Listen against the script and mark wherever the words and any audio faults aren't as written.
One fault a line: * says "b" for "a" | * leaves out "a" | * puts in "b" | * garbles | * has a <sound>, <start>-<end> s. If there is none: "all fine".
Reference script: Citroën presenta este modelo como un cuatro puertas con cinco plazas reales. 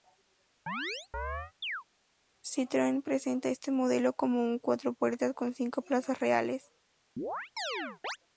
* has a chirp, 0.7-1.8 s
* has a chirp, 7.2-8.2 s